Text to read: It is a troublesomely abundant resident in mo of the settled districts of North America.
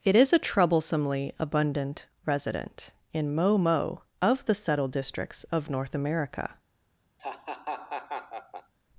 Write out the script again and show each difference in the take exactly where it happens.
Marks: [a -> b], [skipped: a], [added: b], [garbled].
It is a troublesomely abundant resident in mo [added: mo] of the settled districts of North America.